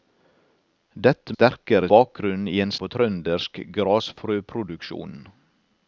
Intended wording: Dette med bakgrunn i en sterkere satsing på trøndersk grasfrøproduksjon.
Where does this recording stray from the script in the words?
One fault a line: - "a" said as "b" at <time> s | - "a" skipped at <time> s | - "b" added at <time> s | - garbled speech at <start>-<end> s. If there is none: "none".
- "med" said as "sterkere" at 1.3 s
- "sterkere satsing" skipped at 2.7 s